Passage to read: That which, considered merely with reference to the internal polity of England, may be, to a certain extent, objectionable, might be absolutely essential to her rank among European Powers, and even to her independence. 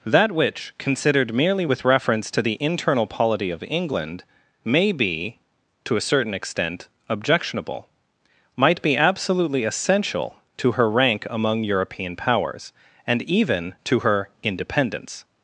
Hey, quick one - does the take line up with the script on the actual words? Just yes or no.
yes